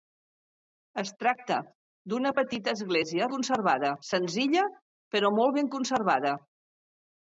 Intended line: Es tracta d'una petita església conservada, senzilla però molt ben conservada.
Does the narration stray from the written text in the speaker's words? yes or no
no